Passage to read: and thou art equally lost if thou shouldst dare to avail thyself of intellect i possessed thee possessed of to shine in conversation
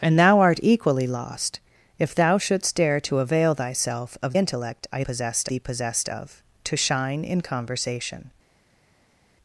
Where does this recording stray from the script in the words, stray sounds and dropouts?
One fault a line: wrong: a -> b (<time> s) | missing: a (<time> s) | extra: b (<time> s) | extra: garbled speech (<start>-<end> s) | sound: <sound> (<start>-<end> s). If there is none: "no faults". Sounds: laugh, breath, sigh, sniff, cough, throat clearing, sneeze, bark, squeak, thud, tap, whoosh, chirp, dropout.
no faults